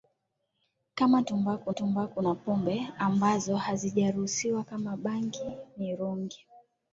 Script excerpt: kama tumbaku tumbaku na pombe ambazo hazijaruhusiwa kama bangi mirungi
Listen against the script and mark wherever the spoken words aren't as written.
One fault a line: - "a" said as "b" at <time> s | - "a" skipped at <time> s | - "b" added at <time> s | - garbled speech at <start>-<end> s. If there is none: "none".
none